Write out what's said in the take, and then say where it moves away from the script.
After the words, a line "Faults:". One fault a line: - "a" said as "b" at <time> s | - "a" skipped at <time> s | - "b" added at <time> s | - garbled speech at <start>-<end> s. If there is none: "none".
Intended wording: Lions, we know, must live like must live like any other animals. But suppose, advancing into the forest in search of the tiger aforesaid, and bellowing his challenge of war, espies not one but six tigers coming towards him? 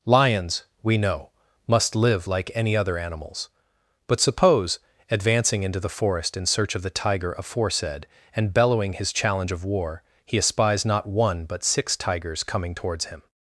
Lions, we know, must live like any other animals. But suppose, advancing into the forest in search of the tiger aforesaid, and bellowing his challenge of war, he espies not one but six tigers coming towards him?
Faults:
- "must live like" skipped at 2.5 s
- "he" added at 10.2 s